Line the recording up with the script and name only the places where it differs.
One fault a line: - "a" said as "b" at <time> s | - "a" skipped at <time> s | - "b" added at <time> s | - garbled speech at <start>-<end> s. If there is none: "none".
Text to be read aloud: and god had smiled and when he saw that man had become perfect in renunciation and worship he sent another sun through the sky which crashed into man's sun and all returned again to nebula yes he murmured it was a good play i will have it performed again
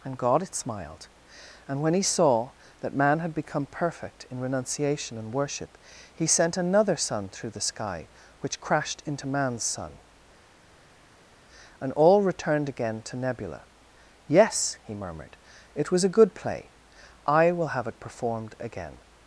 none